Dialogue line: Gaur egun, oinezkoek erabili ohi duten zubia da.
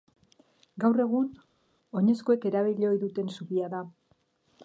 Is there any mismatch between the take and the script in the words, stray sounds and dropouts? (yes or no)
no